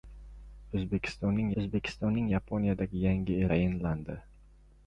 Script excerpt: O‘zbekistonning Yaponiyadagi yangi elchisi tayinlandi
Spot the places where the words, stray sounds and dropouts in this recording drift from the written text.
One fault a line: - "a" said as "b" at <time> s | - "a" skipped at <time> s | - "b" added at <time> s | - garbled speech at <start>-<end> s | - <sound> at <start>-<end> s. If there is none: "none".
- "o‘zbekistonning" added at 1.6 s
- "elchisi" skipped at 3.4 s